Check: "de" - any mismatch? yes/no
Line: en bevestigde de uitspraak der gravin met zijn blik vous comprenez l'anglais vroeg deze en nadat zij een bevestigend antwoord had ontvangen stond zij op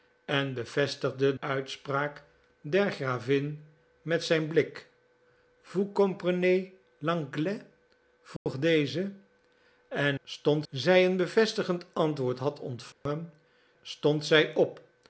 yes